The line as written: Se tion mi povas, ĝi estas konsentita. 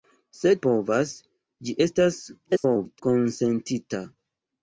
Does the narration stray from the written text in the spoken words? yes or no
yes